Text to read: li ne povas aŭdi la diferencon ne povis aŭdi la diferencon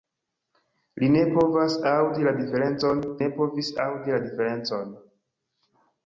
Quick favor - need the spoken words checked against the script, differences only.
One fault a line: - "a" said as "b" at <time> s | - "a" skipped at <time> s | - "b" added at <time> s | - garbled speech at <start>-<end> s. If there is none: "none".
none